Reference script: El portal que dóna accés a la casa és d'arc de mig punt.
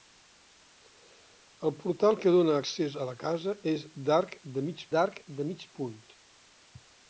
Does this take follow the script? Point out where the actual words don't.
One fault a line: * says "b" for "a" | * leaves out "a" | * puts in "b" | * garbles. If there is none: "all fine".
* puts in "d'arc de mig"